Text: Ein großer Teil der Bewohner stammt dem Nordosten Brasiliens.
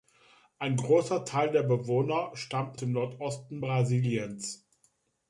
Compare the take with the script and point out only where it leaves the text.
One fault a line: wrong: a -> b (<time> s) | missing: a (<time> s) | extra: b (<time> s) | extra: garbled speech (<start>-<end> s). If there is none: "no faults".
no faults